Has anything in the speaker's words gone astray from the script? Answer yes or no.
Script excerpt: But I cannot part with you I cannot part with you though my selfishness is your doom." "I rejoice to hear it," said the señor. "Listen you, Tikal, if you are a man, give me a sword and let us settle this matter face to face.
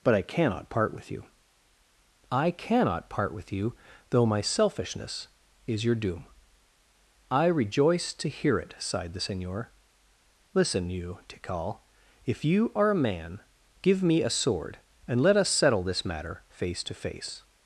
yes